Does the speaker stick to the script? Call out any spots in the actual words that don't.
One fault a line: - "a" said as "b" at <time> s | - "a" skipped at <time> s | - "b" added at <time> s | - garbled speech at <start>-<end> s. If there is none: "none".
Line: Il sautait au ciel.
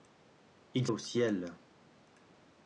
- "sautait" skipped at 0.9 s